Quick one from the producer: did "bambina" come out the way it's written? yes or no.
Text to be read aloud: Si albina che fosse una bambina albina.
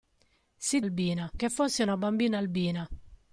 yes